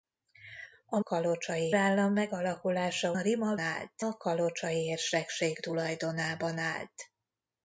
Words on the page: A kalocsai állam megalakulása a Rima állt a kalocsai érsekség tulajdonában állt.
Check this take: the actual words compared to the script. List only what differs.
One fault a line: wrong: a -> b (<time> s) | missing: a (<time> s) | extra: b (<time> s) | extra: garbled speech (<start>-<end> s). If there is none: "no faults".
no faults